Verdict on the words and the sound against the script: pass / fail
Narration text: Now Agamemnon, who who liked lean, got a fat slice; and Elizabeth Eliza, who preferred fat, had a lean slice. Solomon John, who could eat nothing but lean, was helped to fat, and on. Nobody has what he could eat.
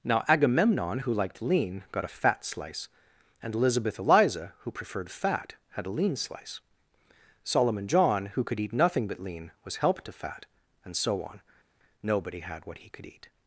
fail